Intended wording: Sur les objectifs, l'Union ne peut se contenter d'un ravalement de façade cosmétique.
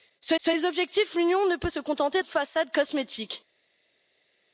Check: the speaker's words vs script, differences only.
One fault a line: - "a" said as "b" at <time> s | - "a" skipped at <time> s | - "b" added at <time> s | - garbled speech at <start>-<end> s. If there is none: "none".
- "sur" added at 0.4 s
- "d'un ravalement" skipped at 2.2 s